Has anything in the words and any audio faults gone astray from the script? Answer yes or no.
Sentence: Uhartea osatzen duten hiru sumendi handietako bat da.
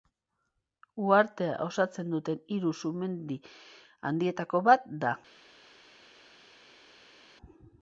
no